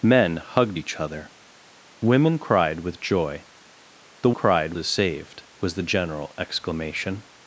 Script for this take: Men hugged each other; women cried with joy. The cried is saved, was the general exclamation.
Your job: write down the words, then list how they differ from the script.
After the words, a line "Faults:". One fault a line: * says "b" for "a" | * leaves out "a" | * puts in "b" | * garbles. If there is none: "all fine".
Men hugged each other; women cried with joy. The cried is saved, was the general exclamation.
Faults:
all fine